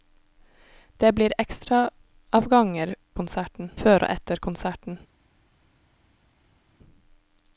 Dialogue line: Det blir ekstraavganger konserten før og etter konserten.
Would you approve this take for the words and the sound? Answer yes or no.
yes